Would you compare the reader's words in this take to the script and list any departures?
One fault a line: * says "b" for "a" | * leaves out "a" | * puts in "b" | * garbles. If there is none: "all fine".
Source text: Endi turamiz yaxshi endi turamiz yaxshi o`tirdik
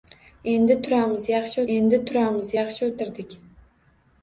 all fine